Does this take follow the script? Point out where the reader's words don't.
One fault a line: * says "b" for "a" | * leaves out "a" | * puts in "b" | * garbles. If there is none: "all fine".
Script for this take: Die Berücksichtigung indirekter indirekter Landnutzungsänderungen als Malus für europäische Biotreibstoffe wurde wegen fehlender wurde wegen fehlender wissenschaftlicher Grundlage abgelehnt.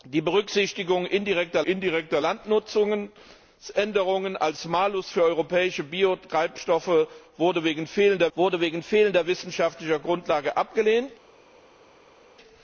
all fine